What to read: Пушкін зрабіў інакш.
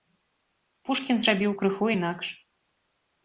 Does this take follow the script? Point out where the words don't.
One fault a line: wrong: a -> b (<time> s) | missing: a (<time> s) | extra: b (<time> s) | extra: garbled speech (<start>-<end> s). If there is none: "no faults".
extra: крыху (1.6 s)